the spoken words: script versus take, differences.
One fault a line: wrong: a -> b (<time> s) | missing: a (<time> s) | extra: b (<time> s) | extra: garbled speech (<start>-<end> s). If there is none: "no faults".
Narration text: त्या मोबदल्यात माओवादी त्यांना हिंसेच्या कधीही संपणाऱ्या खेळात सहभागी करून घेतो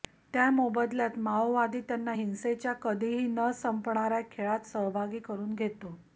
extra: न (3.3 s)